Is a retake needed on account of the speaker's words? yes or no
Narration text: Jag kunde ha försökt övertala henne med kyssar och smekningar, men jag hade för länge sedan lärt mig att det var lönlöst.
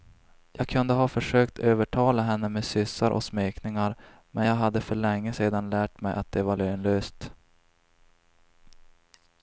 no